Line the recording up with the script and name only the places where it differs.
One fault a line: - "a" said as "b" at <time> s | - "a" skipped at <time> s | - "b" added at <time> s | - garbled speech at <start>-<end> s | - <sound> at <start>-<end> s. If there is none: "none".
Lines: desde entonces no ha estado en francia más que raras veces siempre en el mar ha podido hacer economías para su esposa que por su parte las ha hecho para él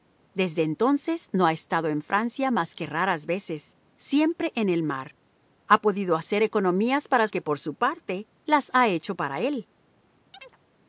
- "su esposa" skipped at 7.3 s
- chirp at 10.3-10.6 s